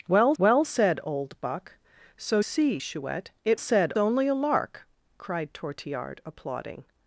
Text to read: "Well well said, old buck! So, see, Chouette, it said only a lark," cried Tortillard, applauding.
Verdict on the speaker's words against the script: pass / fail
pass